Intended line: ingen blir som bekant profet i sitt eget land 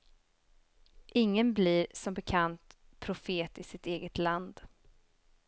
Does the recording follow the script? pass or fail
pass